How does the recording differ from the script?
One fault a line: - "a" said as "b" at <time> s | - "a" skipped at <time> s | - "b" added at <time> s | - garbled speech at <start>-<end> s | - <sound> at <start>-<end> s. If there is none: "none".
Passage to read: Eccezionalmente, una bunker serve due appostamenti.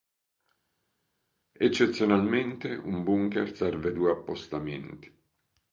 - "una" said as "un" at 2.8 s